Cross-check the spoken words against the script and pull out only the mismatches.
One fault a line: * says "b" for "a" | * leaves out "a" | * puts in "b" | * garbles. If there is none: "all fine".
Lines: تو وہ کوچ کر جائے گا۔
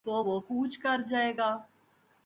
all fine